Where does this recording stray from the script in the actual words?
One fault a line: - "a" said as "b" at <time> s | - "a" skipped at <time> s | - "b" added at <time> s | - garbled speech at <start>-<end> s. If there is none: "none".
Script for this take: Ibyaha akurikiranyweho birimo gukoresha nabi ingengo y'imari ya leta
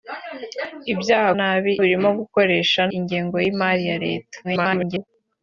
- "akurikiranyweho" said as "nabi" at 1.4 s
- "nabi" skipped at 2.8 s
- garbled speech at 4.4-5.1 s